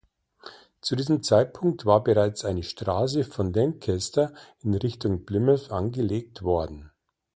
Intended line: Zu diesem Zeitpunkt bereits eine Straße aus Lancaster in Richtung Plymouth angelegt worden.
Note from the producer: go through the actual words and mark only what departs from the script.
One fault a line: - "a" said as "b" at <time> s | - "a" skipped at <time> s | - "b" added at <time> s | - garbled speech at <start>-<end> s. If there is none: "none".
- "war" added at 1.8 s
- "aus" said as "von" at 3.3 s